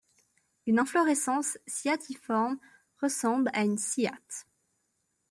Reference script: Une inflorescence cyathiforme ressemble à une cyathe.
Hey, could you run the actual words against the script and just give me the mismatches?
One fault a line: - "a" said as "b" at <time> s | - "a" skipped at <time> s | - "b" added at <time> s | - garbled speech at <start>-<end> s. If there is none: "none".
none